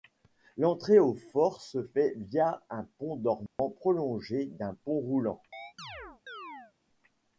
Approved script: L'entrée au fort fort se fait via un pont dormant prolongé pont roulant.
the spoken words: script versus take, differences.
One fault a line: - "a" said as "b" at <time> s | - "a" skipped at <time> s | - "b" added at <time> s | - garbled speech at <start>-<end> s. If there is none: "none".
- "fort" skipped at 1.6 s
- "d'un" added at 4.4 s